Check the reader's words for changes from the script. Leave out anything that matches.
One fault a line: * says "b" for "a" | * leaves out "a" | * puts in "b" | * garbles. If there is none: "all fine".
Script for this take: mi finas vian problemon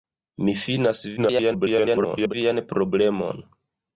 * garbles